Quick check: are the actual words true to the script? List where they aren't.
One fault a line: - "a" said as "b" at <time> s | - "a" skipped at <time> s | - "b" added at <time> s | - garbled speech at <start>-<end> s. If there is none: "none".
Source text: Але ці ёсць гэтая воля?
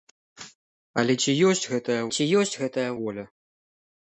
- "ці ёсць гэтая" added at 2.2 s